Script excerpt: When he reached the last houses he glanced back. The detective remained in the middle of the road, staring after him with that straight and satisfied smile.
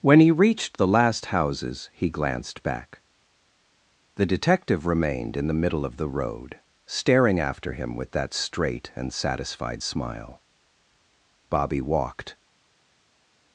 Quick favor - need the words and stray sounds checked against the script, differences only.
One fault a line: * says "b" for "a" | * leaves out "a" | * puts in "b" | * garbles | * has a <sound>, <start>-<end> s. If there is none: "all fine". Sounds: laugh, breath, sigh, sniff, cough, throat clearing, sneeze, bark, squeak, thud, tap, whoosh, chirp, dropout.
* puts in "Bobby walked"